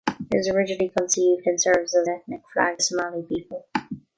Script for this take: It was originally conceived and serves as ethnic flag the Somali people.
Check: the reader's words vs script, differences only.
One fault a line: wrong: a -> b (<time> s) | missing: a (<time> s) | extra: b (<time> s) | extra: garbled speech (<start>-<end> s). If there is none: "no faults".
no faults